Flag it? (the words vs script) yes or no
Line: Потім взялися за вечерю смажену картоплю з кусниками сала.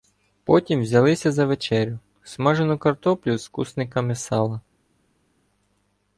no